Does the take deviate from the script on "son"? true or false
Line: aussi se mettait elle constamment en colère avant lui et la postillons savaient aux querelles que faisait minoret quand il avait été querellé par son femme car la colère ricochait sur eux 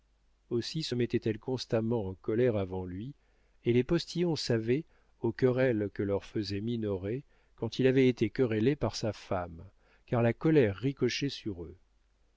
true